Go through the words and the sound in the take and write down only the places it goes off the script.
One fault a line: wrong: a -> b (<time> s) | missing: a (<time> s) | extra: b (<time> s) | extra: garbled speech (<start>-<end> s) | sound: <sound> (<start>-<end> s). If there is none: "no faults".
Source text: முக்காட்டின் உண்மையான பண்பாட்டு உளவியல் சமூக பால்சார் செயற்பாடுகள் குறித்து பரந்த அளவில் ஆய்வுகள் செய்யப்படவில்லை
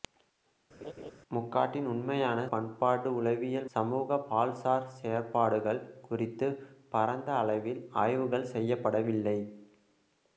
sound: laugh (0.8-1.1 s)